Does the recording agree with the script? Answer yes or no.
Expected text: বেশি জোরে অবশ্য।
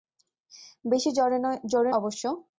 yes